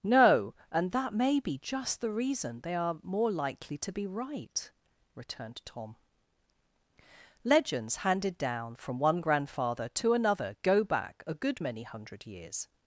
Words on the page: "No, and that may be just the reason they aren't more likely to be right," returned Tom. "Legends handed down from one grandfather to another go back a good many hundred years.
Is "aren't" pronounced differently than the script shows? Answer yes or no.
yes